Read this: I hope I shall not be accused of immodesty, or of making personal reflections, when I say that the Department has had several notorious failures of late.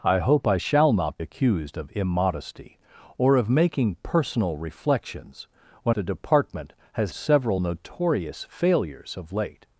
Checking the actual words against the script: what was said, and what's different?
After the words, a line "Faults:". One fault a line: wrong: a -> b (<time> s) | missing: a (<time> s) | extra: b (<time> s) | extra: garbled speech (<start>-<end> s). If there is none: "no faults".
I hope I shall not accused of immodesty, or of making personal reflections, when the Department has several notorious failures of late.
Faults:
missing: be (1.2 s)
missing: I say that (6.0 s)
missing: had (7.1 s)